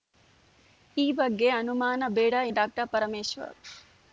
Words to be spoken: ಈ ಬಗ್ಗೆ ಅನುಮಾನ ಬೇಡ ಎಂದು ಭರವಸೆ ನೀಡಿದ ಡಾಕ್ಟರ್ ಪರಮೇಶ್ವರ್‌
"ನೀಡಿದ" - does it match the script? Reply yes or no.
no